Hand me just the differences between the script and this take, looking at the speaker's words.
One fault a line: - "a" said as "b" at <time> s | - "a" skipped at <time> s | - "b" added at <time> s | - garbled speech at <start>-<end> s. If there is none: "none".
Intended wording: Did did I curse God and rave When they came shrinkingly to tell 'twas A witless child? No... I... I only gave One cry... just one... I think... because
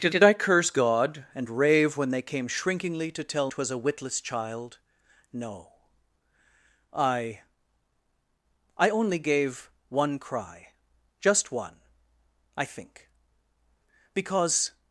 none